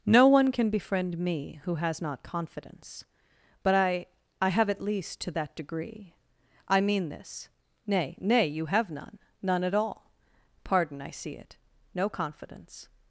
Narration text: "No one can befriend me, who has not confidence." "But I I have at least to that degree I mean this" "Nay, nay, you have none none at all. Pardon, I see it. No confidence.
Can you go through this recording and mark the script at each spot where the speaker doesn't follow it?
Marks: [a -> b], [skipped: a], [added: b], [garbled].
"No one can befriend me, who has not confidence." "But I I have at least to that degree I mean this" "Nay, nay, you have none none at all. Pardon, I see it. No confidence.